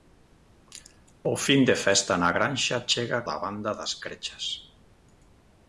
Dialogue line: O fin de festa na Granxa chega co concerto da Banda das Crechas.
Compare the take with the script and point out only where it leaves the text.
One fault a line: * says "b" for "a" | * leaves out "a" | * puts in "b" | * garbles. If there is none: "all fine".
* leaves out "co concerto"